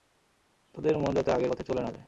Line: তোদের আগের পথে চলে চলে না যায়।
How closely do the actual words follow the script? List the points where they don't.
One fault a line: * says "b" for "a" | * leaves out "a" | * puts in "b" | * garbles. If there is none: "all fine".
* puts in "মন যাতে"
* leaves out "চলে"